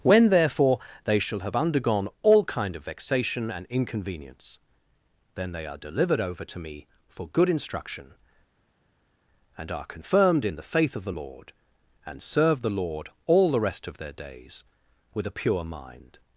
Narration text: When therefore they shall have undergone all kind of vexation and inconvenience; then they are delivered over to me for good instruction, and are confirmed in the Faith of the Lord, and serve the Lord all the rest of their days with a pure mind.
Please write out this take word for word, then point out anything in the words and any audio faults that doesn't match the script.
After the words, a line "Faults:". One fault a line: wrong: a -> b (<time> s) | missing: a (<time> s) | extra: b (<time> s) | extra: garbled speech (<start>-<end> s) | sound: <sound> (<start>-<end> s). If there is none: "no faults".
When therefore they shall have undergone all kind of vexation and inconvenience; then they are delivered over to me for good instruction, and are confirmed in the Faith of the Lord, and serve the Lord all the rest of their days with a pure mind.
Faults:
no faults